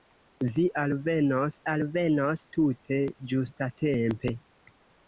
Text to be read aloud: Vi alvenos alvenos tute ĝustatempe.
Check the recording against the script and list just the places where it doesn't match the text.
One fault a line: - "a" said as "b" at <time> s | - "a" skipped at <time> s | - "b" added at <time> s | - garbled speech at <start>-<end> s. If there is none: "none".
none